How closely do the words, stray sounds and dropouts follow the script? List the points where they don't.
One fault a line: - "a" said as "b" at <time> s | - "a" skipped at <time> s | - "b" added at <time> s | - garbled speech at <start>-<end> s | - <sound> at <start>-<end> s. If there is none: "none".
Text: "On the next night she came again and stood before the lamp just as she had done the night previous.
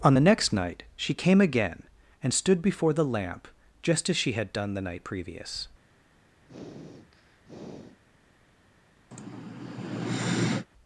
- sniff at 6.5-8.0 s
- sigh at 9.1-10.7 s